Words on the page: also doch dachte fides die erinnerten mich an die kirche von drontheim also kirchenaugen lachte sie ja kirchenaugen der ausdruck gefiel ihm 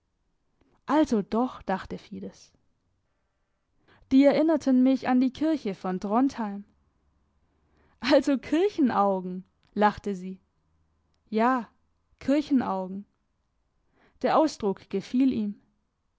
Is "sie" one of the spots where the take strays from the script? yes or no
no